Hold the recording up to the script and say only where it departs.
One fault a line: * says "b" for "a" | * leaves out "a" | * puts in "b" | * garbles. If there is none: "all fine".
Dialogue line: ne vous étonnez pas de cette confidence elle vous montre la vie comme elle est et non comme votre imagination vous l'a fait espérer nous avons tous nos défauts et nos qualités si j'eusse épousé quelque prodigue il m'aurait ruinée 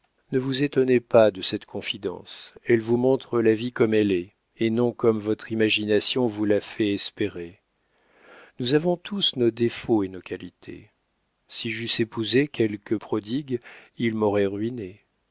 all fine